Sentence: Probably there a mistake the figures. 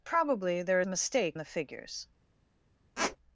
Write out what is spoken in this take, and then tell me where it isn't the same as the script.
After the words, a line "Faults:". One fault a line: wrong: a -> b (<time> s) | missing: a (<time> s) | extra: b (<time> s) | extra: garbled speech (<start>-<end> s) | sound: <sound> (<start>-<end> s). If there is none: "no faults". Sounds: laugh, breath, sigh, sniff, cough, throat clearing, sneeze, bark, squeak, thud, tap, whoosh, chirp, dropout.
Probably there a mistake the figures.
Faults:
sound: squeak (3.0-3.2 s)